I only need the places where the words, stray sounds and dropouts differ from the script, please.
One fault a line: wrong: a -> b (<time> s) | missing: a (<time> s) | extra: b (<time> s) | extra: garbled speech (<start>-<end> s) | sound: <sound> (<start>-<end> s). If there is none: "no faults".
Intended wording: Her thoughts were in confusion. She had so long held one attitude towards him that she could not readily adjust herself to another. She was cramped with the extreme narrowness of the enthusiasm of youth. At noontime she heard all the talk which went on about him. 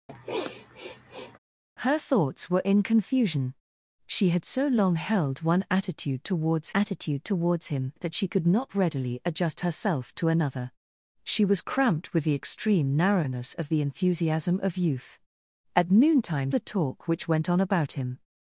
sound: sniff (0.1-1.4 s)
extra: attitude towards (6.7 s)
missing: she heard all (16.5 s)